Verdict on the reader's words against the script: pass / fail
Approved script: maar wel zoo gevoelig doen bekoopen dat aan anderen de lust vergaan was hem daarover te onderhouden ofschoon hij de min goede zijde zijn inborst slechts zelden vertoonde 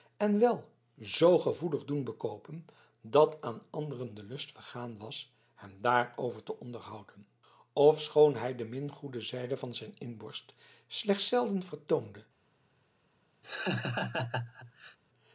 fail